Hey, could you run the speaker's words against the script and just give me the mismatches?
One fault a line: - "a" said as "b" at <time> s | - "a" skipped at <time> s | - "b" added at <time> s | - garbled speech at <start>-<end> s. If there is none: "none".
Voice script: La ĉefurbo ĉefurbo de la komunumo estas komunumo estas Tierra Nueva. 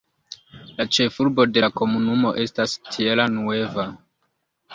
- "ĉefurbo" skipped at 1.4 s
- "komunumo estas" skipped at 2.8 s